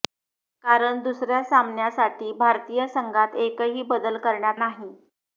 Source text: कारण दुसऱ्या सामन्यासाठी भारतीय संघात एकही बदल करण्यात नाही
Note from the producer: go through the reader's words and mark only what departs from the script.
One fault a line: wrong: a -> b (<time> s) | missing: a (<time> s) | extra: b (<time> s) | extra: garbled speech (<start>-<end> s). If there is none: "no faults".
no faults